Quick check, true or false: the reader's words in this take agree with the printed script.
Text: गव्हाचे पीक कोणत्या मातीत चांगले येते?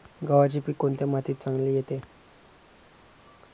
true